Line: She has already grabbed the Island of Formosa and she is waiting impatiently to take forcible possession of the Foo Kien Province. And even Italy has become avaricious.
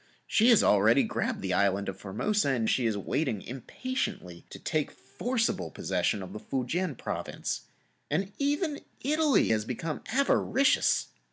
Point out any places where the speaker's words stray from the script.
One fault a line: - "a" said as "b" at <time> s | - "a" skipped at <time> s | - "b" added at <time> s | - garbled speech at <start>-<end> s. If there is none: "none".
none